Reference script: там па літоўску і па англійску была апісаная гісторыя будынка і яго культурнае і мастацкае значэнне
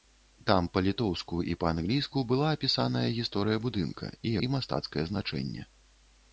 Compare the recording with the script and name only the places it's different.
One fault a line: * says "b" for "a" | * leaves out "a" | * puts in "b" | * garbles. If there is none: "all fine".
* leaves out "яго культурнае"